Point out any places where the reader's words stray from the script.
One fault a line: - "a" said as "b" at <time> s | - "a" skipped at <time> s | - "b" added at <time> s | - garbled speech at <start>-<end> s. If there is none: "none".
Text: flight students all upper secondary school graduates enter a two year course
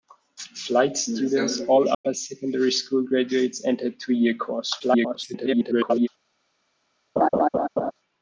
- garbled speech at 4.8-6.1 s